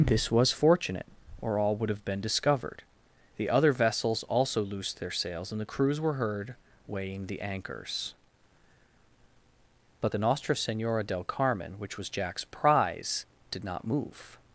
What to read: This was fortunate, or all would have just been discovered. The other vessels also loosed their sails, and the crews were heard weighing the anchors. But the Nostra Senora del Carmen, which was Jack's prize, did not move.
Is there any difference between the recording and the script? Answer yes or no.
yes